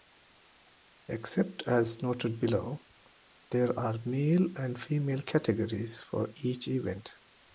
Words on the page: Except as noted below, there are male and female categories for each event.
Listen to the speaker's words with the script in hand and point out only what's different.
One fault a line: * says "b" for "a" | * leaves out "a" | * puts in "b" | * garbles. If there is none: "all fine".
all fine